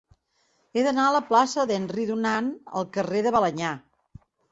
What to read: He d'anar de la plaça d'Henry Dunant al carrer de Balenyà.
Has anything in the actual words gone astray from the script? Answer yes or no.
no